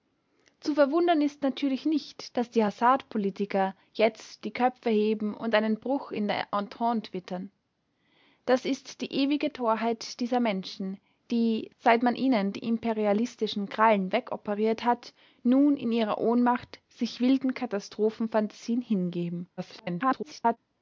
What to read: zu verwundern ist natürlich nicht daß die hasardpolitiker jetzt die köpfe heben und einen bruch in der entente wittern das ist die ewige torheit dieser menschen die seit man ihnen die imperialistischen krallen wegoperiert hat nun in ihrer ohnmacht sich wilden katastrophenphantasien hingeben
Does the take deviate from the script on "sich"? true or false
false